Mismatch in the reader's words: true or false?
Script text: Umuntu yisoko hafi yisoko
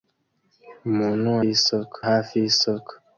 false